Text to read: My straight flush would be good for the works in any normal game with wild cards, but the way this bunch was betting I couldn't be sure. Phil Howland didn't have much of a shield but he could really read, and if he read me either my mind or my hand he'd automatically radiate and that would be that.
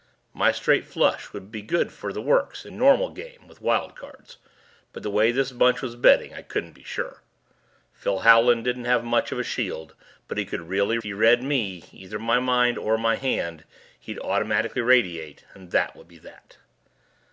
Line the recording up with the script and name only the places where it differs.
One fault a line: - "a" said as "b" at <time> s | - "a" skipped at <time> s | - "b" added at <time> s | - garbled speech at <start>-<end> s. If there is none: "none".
- "any" skipped at 2.7 s
- "read and if" skipped at 11.0 s